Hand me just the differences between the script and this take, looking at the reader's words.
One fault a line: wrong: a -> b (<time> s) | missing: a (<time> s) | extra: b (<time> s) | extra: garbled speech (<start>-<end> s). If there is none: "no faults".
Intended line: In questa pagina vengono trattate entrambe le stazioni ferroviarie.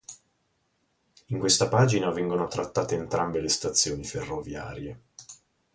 no faults